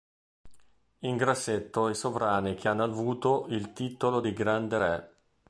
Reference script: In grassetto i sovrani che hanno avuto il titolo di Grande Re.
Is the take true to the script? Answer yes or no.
yes